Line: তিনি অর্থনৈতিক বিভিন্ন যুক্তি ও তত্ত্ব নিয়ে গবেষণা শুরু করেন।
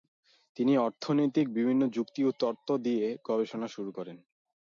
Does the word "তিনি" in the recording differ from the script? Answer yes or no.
no